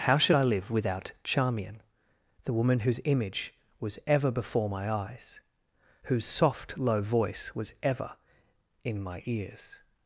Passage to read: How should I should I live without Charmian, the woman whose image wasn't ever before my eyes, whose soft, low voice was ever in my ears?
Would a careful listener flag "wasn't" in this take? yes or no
yes